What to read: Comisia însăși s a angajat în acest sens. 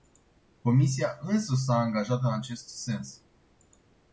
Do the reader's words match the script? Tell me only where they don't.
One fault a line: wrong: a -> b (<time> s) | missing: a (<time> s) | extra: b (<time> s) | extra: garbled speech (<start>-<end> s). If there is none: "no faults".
no faults